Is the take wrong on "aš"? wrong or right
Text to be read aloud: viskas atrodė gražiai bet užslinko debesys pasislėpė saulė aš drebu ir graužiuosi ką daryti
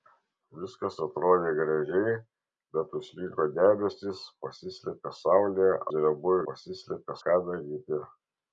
wrong